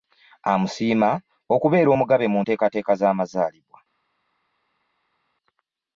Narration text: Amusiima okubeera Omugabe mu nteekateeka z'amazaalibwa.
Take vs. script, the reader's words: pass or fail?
pass